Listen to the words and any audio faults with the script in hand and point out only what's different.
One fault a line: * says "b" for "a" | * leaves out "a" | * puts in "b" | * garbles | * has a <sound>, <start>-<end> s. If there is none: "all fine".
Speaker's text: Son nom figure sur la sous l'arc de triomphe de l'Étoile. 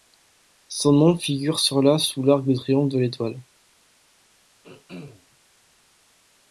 * has a throat clearing, 4.6-5.3 s